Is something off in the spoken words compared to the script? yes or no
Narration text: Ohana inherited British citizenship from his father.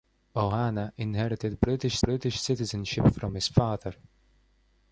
yes